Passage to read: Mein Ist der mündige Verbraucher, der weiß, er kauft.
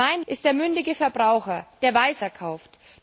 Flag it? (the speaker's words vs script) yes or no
no